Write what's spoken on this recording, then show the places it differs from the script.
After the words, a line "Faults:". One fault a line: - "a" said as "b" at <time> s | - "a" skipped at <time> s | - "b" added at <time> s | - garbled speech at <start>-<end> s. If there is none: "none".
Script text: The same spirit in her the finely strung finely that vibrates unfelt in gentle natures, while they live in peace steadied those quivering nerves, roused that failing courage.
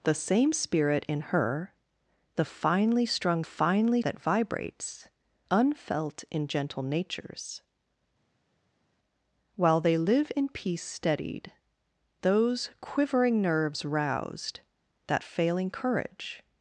The same spirit in her the finely strung finely that vibrates unfelt in gentle natures, while they live in peace steadied those quivering nerves, roused that failing courage.
Faults:
none